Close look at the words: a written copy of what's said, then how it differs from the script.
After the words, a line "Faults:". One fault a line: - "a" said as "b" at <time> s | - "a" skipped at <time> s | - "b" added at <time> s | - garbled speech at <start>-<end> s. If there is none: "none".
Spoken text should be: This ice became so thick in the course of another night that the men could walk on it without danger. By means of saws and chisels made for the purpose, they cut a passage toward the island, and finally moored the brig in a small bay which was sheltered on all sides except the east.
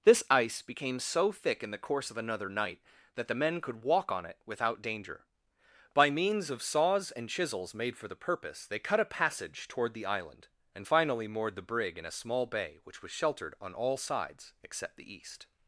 This ice became so thick in the course of another night that the men could walk on it without danger. By means of saws and chisels made for the purpose, they cut a passage toward the island, and finally moored the brig in a small bay which was sheltered on all sides except the east.
Faults:
none